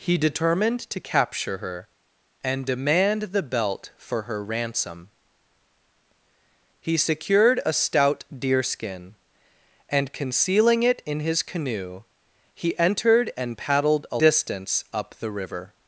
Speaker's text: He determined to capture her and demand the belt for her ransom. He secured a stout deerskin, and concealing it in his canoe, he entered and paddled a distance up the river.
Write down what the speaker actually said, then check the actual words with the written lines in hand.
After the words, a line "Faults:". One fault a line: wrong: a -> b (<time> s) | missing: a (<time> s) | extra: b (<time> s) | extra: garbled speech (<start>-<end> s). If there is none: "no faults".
He determined to capture her and demand the belt for her ransom. He secured a stout deerskin, and concealing it in his canoe, he entered and paddled a distance up the river.
Faults:
no faults